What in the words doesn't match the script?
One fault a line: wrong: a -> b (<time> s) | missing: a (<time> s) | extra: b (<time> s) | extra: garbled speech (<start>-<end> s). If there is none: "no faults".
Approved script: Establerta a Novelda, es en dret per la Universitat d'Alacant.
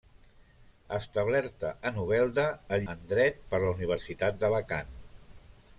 no faults